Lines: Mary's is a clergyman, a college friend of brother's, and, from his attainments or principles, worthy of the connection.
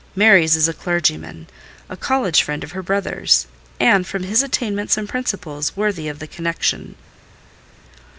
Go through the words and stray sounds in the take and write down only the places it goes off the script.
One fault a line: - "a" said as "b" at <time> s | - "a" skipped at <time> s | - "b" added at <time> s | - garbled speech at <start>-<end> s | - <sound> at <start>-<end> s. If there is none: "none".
- "her" added at 2.7 s
- "or" said as "and" at 5.0 s